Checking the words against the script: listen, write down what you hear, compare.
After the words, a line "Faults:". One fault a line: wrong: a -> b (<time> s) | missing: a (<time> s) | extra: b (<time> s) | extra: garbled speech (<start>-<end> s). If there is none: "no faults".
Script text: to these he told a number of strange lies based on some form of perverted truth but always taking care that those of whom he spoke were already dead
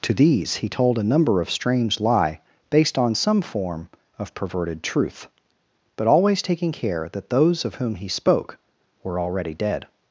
to these he told a number of strange lie based on some form of perverted truth but always taking care that those of whom he spoke were already dead
Faults:
wrong: lies -> lie (2.0 s)